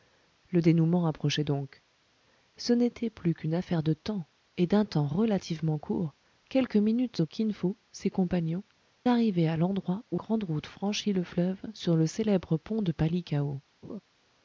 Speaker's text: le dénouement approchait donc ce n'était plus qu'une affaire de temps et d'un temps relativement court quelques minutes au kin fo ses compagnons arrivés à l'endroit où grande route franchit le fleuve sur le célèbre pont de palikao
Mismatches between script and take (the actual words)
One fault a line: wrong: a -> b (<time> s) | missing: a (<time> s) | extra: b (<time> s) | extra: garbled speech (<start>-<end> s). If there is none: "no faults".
no faults